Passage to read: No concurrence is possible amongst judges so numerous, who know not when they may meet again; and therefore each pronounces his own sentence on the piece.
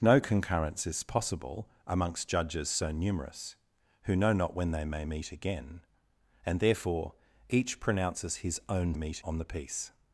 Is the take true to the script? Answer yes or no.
no